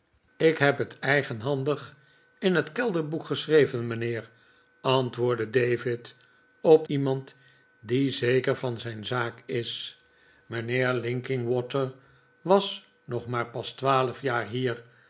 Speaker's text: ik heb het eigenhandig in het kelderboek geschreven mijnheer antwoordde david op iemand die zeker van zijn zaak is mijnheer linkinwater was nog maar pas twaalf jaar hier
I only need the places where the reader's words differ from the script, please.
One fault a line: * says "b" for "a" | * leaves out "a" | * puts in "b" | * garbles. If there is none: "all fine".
all fine